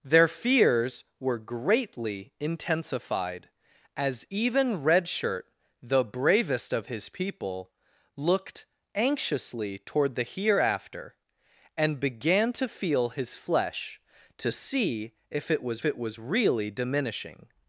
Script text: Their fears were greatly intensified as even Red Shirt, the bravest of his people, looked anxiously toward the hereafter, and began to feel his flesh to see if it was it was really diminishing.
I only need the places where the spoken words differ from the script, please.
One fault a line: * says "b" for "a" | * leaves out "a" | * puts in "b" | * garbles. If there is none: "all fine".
all fine